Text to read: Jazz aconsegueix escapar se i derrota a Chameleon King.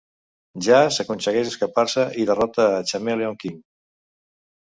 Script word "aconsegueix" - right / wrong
right